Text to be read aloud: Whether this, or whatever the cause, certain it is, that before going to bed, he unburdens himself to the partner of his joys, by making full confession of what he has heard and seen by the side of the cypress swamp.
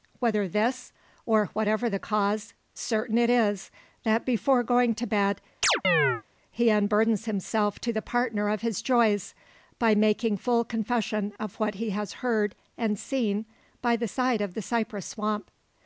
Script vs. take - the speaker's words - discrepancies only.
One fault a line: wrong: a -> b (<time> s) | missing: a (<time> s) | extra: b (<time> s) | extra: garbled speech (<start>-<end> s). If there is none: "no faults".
no faults